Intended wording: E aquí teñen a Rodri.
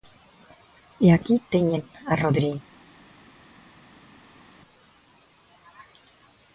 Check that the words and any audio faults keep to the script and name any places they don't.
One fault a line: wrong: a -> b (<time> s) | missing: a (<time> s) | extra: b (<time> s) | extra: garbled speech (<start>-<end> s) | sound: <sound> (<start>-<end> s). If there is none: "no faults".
no faults